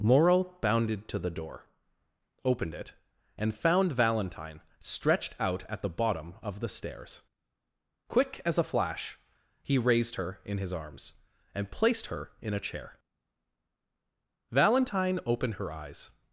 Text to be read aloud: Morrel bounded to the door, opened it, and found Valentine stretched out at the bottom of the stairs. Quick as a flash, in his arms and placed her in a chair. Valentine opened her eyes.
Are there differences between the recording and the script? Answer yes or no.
yes